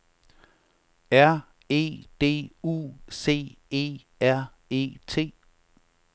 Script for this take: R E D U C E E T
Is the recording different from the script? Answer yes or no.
yes